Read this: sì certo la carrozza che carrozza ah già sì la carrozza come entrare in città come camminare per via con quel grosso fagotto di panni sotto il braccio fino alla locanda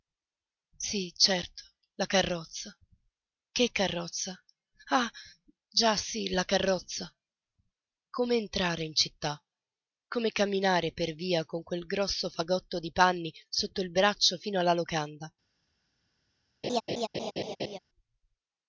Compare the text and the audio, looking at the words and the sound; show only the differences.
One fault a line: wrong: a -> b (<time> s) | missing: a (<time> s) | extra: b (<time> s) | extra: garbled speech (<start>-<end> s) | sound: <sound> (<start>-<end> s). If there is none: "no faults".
sound: laugh (16.6-17.8 s)